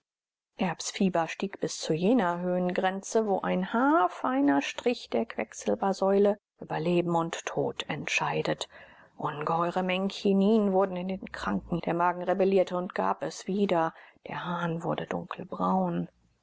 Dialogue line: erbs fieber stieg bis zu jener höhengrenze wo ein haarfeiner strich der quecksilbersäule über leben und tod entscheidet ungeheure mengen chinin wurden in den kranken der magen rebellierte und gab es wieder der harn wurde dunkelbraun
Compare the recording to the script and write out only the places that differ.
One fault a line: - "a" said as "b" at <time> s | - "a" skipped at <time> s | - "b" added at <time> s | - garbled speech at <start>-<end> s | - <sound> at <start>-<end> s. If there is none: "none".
none